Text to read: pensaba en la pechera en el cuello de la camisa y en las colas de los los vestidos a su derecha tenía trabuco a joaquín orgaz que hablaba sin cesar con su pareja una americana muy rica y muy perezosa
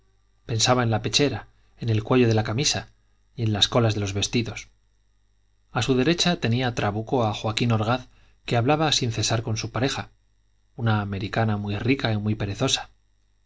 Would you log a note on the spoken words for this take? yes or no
yes